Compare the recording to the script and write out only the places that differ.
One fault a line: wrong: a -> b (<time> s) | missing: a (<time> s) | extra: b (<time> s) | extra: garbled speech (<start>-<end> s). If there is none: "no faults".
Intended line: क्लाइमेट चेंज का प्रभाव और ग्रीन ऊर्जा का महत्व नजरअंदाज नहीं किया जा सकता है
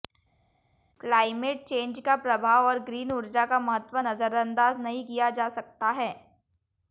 no faults